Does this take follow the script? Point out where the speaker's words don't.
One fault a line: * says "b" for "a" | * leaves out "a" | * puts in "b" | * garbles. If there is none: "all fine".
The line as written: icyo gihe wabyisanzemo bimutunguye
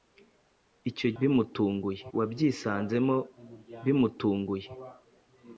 * says "bimutunguye" for "gihe"